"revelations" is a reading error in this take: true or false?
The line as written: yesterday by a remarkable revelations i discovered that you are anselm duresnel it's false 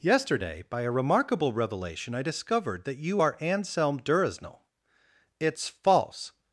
true